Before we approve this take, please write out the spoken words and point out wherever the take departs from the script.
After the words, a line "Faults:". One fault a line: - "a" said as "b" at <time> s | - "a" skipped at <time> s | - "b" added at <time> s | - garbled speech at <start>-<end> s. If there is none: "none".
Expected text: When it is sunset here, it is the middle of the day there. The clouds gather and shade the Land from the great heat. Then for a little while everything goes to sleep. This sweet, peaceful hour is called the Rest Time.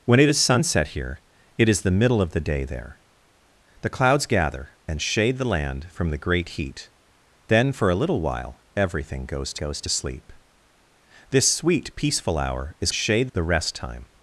When it is sunset here, it is the middle of the day there. The clouds gather and shade the Land from the great heat. Then for a little while everything goes to goes to sleep. This sweet, peaceful hour is shade the Rest Time.
Faults:
- "goes to" added at 9.6 s
- "called" said as "shade" at 12.9 s